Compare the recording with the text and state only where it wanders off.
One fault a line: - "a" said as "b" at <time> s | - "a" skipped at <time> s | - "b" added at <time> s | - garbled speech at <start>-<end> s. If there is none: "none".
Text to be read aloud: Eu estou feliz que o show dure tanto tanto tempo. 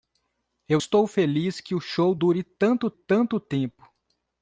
none